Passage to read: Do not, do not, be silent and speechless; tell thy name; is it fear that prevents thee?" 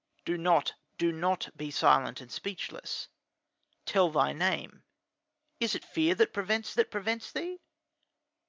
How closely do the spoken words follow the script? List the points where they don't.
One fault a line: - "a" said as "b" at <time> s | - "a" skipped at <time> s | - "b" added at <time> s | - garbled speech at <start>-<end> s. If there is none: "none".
- "that prevents" added at 6.7 s